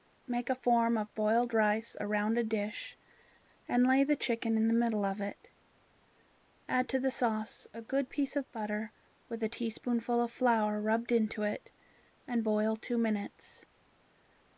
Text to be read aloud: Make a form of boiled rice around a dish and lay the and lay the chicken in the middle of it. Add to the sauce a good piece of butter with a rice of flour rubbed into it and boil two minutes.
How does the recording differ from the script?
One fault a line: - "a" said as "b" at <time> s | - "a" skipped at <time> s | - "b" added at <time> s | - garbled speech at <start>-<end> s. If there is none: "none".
- "and lay the" skipped at 4.2 s
- "rice" said as "teaspoonful" at 9.5 s